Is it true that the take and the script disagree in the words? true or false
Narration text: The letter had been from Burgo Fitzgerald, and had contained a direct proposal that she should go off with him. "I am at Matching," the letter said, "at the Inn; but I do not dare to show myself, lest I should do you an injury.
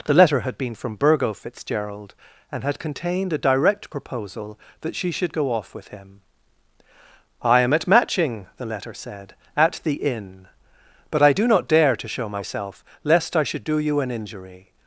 false